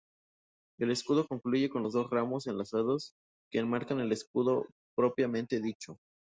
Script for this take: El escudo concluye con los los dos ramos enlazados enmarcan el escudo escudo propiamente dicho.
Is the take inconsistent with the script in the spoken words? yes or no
yes